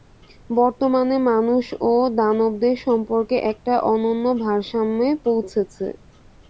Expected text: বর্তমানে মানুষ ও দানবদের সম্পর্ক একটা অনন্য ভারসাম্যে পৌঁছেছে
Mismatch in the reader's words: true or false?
false